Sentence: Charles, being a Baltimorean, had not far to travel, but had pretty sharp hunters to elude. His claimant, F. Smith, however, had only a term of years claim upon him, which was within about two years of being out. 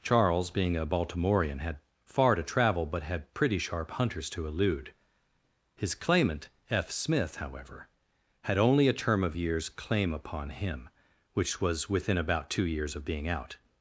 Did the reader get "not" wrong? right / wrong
wrong